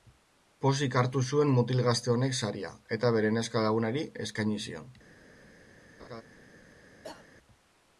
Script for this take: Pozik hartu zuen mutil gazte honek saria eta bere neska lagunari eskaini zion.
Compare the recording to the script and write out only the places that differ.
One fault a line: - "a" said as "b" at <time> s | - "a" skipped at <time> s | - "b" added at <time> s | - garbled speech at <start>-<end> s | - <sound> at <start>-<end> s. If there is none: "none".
- laugh at 6.0-6.2 s
- cough at 7.0-7.3 s